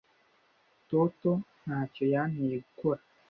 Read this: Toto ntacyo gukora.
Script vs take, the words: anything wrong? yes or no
yes